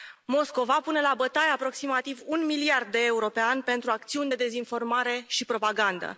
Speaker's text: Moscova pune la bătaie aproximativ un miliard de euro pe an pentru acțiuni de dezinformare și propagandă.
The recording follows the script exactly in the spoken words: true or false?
true